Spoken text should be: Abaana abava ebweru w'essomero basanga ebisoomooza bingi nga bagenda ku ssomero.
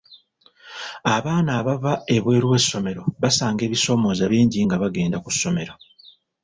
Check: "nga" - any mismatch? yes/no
no